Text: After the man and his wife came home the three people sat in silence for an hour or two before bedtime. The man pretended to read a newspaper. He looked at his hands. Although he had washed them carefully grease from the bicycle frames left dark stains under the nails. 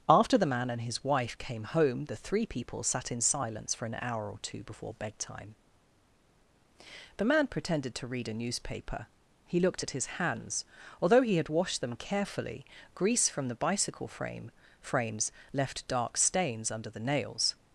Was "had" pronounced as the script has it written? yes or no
yes